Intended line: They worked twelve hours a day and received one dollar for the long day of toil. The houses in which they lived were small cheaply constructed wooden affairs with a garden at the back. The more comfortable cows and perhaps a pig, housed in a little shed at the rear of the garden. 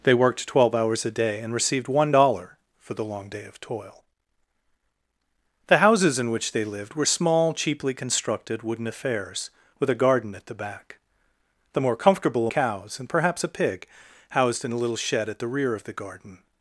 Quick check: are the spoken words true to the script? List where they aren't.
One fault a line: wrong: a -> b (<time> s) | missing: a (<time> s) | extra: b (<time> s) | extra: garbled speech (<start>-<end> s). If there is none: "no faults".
no faults